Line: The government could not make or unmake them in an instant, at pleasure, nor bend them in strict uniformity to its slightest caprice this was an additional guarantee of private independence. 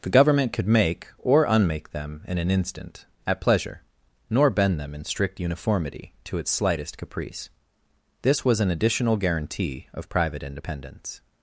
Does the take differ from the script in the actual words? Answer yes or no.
yes